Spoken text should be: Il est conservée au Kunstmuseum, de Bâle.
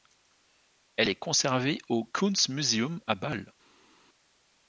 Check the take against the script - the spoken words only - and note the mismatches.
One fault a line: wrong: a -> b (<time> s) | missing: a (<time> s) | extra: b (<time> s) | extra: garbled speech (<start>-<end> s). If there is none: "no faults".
wrong: Il -> Elle (0.9 s)
wrong: de -> à (3.0 s)